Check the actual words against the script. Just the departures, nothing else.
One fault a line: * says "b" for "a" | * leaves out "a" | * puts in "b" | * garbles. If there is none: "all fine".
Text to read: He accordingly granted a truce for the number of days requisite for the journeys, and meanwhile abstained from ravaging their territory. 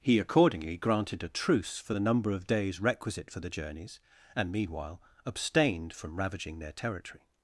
all fine